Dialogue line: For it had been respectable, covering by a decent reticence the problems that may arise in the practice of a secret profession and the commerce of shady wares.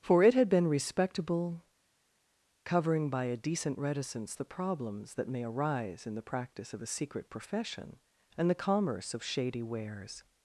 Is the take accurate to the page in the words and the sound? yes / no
yes